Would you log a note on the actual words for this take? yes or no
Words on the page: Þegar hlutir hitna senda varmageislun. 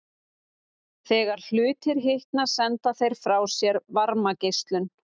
yes